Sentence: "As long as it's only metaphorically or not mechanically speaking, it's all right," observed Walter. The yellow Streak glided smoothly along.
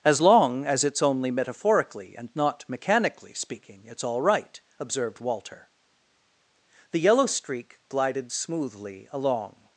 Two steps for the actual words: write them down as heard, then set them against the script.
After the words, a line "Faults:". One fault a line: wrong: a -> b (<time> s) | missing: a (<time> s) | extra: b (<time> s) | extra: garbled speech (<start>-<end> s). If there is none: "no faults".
"As long as it's only metaphorically and not mechanically speaking, it's all right," observed Walter. The yellow Streak glided smoothly along.
Faults:
wrong: or -> and (2.2 s)